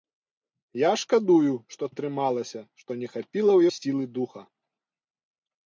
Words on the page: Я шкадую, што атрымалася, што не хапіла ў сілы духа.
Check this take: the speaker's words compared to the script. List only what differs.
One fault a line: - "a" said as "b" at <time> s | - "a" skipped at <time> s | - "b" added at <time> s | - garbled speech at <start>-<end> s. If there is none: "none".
none